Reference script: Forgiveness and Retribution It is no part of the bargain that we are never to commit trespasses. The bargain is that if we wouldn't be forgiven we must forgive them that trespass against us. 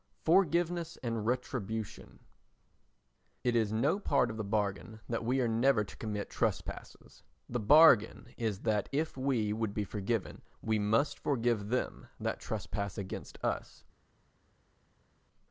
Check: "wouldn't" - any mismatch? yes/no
yes